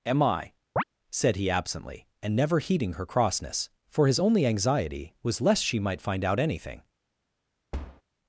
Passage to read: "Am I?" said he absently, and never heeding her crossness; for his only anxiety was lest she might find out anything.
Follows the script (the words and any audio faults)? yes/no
no